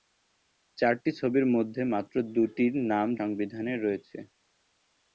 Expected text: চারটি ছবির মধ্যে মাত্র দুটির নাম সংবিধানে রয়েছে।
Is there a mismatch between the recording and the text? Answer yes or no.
no